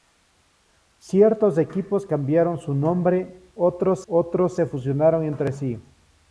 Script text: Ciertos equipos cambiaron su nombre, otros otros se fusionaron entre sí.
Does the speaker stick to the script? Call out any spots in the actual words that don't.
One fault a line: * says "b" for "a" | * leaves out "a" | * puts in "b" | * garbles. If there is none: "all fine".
all fine